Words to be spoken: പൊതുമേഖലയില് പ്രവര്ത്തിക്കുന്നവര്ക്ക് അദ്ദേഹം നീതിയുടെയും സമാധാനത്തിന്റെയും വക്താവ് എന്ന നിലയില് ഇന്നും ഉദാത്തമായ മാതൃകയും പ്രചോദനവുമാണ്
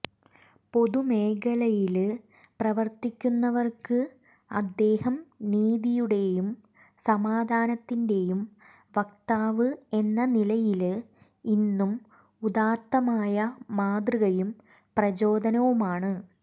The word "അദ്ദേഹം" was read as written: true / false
true